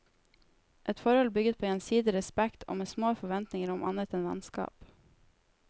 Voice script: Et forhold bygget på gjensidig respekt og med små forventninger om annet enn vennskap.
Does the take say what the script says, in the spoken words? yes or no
yes